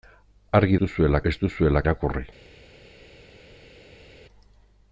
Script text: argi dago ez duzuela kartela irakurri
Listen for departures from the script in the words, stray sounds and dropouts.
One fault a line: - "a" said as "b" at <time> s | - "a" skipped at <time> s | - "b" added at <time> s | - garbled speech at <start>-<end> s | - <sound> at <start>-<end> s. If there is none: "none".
- "dago" said as "duzuela" at 0.8 s
- "kartela" skipped at 1.8 s